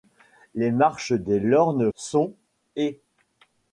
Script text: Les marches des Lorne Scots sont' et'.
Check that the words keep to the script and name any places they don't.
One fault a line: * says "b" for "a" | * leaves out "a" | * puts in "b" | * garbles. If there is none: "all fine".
* leaves out "Scots"